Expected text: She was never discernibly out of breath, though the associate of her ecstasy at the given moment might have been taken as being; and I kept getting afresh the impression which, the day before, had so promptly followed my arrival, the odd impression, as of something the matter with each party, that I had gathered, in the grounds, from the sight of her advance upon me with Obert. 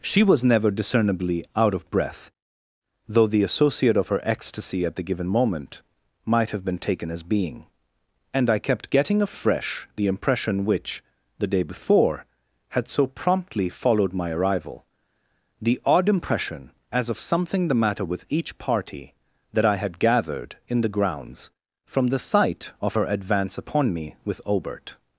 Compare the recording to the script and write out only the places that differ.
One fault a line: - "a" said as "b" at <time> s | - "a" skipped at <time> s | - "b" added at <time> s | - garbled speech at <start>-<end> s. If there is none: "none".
none